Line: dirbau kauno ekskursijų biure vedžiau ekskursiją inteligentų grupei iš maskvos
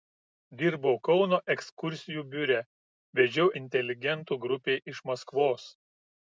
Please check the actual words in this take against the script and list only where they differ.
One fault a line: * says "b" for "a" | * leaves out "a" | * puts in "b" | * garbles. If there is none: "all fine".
* leaves out "ekskursiją"